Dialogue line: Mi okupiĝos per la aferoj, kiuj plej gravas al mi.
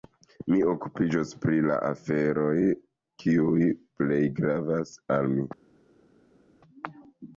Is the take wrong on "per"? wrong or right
wrong